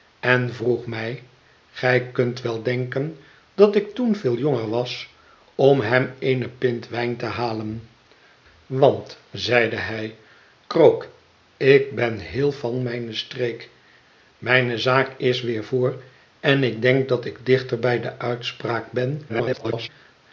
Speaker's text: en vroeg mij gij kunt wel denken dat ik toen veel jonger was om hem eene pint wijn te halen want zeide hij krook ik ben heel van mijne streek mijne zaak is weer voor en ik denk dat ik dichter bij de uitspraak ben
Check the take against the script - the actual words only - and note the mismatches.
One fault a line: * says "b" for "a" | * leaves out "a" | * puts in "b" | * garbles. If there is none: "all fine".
* garbles